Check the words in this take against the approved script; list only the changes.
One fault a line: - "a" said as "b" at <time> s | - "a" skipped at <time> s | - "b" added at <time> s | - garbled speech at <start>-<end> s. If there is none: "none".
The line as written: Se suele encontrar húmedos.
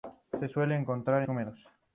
none